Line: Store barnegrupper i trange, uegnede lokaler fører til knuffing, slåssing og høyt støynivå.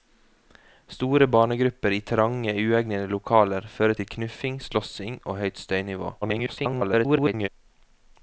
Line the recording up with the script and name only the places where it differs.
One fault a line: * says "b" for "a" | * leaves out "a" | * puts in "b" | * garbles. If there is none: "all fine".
* garbles